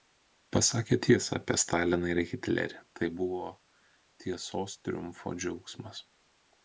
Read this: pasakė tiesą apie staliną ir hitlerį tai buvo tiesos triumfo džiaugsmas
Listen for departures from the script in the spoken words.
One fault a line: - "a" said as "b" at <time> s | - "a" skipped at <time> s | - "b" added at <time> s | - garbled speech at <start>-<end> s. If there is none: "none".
none